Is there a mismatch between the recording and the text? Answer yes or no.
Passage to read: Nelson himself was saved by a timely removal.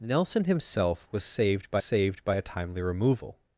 yes